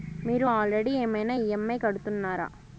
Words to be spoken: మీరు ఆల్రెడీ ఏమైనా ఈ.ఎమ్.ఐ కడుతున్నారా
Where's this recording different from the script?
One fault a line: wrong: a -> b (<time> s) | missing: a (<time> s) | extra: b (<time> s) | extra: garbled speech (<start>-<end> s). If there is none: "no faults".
no faults